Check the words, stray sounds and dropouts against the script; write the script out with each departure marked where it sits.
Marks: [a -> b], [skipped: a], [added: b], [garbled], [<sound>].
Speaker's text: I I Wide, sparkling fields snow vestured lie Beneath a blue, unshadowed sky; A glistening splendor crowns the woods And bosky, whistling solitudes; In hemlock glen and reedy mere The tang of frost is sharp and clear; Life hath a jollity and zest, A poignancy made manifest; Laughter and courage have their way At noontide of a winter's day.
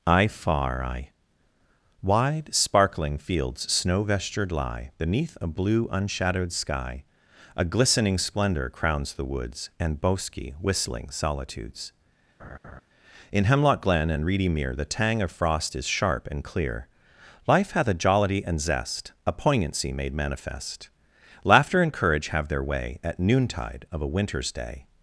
I [added: far] I Wide, sparkling fields snow vestured lie Beneath a blue, unshadowed sky; A glistening splendor crowns the woods And bosky, whistling solitudes; [laugh] In hemlock glen and reedy mere The tang of frost is sharp and clear; Life hath a jollity and zest, A poignancy made manifest; Laughter and courage have their way At noontide of a winter's day.